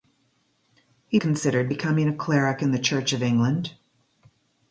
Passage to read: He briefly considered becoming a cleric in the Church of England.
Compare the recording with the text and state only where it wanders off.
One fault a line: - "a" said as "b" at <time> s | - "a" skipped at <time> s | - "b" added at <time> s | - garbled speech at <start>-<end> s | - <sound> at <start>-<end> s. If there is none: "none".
- "briefly" skipped at 1.2 s